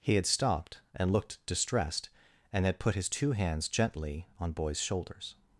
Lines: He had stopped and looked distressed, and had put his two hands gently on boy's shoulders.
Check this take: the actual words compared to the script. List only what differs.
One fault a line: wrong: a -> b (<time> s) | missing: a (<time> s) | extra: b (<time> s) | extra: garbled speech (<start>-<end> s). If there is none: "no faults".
no faults